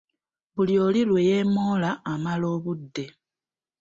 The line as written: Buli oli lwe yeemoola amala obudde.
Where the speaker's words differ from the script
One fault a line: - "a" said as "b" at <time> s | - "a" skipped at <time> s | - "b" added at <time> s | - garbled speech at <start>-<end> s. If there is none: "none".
none